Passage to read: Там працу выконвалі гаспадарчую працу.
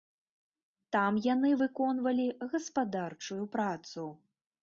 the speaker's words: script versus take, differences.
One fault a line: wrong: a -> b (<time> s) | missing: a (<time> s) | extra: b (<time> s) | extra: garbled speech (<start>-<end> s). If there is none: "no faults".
wrong: працу -> яны (1.3 s)